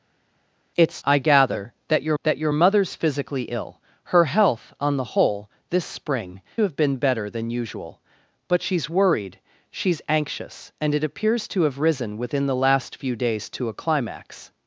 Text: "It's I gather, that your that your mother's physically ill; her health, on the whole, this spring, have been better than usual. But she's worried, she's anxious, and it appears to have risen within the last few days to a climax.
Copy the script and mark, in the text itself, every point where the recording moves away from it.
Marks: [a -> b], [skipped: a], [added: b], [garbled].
"It's I gather, that your that your mother's physically ill; her health, on the whole, this spring, have been better than usual. But she's worried, she's anxious, and it appears to have risen within the last few days to a climax.